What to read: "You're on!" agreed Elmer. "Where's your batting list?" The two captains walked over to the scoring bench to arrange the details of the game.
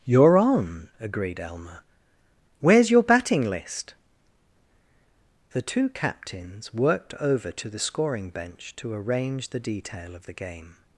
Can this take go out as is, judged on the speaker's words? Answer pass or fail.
fail